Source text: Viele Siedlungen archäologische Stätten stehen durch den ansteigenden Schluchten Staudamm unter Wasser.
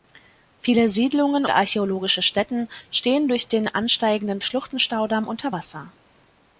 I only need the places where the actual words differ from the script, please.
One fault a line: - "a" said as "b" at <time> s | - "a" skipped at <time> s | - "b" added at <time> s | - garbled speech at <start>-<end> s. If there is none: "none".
none